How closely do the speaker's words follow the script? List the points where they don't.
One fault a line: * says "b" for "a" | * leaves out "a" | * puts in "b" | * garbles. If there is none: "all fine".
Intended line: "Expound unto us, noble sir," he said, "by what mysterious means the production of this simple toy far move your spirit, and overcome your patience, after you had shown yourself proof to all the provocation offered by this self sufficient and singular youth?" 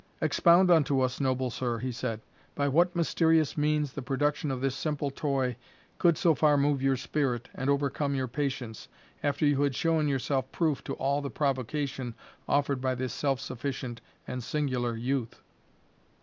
* puts in "could so"